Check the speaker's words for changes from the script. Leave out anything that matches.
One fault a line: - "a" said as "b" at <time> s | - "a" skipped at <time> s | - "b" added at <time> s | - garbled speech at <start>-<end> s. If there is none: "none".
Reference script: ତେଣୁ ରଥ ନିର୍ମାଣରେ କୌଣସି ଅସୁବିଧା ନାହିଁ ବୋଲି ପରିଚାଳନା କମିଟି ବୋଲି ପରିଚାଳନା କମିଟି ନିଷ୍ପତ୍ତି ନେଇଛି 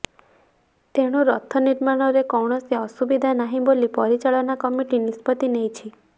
- "ବୋଲି ପରିଚାଳନା କମିଟି" skipped at 5.0 s